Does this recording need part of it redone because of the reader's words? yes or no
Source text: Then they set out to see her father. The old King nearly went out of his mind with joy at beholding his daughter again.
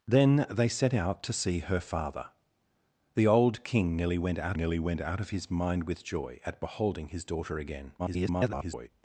yes